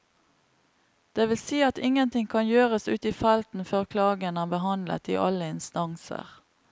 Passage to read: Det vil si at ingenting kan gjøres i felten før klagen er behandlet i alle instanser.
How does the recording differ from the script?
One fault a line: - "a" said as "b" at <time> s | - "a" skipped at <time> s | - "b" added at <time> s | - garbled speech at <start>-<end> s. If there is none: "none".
- "ute" added at 2.9 s